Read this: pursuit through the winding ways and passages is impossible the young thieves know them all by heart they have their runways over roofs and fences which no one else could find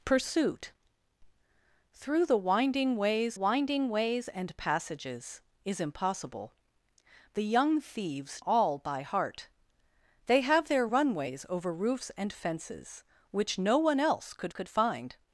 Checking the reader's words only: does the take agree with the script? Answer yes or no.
no